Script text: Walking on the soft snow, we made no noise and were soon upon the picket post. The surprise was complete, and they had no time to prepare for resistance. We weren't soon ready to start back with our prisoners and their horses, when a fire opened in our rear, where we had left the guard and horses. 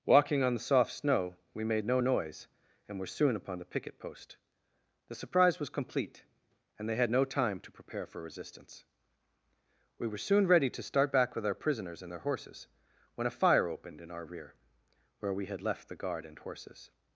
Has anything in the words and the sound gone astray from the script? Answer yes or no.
yes